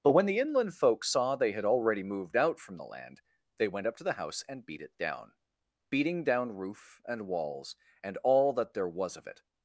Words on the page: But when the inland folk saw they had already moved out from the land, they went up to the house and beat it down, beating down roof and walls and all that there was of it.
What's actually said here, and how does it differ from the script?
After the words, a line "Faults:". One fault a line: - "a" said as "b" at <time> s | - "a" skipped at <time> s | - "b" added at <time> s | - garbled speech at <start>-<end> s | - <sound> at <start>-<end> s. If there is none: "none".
But when the inland folk saw they had already moved out from the land, they went up to the house and beat it down, beating down roof and walls and all that there was of it.
Faults:
none